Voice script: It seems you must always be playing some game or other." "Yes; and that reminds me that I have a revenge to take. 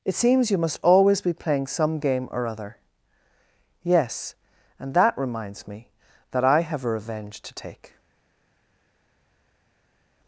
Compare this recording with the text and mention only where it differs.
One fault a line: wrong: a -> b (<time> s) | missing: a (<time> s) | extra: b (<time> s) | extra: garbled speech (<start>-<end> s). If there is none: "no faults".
no faults